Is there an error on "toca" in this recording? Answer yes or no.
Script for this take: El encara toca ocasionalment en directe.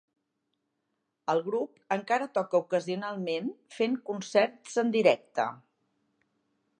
no